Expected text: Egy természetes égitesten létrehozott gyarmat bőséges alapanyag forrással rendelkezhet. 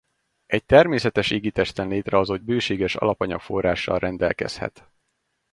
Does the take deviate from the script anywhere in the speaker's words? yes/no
yes